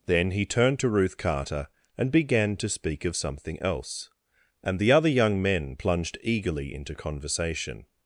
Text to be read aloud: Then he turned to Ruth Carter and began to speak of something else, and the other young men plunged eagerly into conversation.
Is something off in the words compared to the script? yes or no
no